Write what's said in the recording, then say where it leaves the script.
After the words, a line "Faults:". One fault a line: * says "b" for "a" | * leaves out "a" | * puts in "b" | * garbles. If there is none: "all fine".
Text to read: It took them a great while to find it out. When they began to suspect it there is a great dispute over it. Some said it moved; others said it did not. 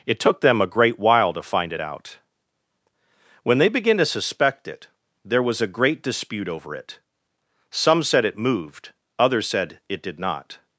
It took them a great while to find it out. When they began to suspect it there was a great dispute over it. Some said it moved; others said it did not.
Faults:
* says "was" for "is"